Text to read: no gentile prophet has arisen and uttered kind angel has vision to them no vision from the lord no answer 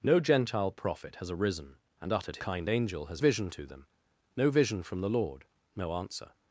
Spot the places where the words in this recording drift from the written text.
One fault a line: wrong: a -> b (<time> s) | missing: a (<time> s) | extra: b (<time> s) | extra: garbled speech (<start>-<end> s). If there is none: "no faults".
no faults